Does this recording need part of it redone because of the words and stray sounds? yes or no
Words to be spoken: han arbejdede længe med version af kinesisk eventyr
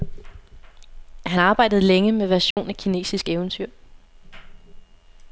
yes